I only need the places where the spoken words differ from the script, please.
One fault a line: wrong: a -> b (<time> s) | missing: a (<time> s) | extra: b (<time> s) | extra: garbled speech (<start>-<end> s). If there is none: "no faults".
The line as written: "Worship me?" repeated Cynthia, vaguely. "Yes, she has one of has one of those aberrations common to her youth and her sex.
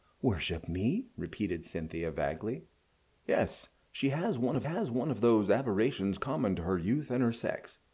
no faults